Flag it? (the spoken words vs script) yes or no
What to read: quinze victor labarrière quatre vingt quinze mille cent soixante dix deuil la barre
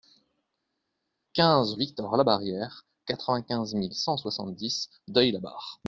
no